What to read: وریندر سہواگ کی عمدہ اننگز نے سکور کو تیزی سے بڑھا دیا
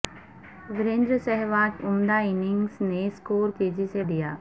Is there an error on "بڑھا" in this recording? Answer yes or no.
yes